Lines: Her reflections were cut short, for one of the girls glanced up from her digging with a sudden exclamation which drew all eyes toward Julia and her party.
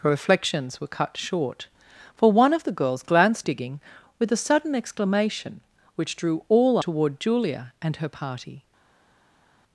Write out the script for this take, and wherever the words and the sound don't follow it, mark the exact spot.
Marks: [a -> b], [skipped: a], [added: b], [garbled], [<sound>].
Her reflections were cut short, for one of the girls glanced [skipped: up from her] digging with a sudden exclamation which drew all [skipped: eyes] toward Julia and her party.